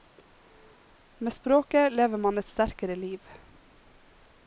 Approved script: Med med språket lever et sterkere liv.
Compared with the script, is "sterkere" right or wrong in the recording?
right